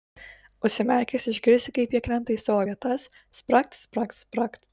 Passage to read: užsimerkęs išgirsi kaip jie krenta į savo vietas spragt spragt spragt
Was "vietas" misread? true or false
false